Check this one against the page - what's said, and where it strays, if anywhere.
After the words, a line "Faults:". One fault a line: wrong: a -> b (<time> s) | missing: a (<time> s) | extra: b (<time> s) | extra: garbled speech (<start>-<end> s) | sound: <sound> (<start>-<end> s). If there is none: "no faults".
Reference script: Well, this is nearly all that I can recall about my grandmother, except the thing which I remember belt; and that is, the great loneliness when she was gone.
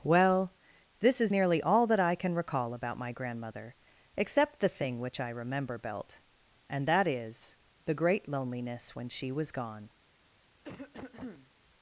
Well, this is nearly all that I can recall about my grandmother, except the thing which I remember belt; and that is, the great loneliness when she was gone.
Faults:
sound: cough (10.6-11.5 s)